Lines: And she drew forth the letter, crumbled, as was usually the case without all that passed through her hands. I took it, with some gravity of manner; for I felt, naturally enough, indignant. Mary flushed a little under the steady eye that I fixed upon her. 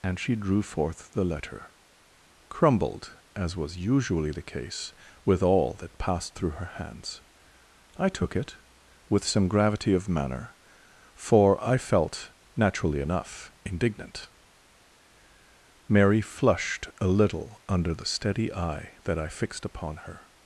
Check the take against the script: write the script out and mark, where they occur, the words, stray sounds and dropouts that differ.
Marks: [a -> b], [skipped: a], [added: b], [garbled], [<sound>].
And she drew forth the letter, crumbled, as was usually the case [without -> with] all that passed through her hands. I took it, with some gravity of manner; for I felt, naturally enough, indignant. Mary flushed a little under the steady eye that I fixed upon her.